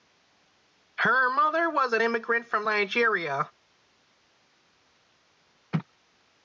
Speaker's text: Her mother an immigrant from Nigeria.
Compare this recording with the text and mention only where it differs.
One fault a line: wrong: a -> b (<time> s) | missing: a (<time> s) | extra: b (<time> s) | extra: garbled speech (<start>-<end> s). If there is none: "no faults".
extra: was (1.7 s)